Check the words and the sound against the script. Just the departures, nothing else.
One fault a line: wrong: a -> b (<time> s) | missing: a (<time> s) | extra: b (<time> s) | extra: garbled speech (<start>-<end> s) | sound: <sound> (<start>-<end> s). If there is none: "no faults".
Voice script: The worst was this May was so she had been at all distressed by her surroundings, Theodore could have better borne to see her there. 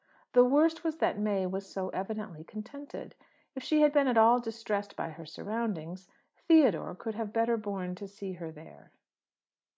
wrong: this -> that (1.0 s)
extra: evidently contented If (1.9 s)